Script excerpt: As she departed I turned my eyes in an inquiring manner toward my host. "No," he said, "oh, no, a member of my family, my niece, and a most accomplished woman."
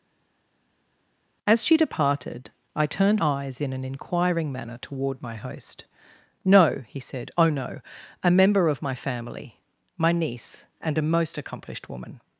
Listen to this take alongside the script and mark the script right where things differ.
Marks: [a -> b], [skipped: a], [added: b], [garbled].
As she departed I turned [skipped: my] eyes in an inquiring manner toward my host. "No," he said, "oh, no, a member of my family, my niece, and a most accomplished woman."